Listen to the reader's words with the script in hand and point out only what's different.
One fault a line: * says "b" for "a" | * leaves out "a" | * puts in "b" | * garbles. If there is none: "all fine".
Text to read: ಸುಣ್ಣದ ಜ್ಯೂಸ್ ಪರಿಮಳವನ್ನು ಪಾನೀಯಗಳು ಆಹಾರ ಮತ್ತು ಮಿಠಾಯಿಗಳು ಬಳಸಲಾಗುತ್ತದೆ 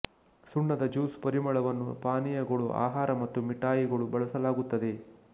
all fine